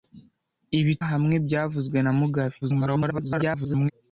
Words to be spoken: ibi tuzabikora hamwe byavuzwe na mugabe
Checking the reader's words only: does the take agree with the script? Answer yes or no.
no